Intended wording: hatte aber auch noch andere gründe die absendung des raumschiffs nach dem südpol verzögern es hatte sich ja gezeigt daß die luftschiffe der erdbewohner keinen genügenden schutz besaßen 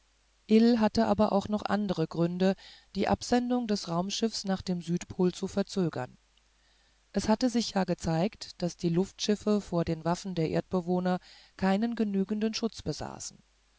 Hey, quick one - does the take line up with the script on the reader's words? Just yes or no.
no